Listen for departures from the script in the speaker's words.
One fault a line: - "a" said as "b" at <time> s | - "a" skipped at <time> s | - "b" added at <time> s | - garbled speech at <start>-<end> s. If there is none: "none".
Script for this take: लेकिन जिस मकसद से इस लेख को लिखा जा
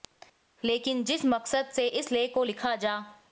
none